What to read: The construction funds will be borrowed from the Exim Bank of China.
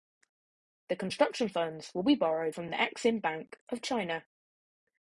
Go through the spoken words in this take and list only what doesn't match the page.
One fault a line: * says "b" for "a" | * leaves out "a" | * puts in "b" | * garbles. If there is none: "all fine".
all fine